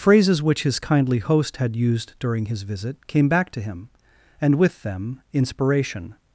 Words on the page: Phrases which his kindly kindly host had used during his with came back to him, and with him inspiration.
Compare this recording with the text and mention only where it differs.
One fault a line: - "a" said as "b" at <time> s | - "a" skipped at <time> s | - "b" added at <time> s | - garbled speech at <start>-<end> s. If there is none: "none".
- "kindly" skipped at 1.2 s
- "with" said as "visit" at 2.6 s
- "him" said as "them" at 4.8 s